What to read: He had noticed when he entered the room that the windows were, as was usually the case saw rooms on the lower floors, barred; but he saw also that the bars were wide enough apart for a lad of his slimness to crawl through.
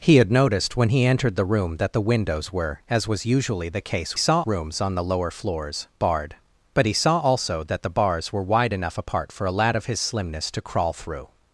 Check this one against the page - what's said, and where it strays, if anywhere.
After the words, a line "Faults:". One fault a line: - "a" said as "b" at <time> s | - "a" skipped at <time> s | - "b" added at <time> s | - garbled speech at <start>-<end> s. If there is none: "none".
He had noticed when he entered the room that the windows were, as was usually the case saw rooms on the lower floors, barred; but he saw also that the bars were wide enough apart for a lad of his slimness to crawl through.
Faults:
none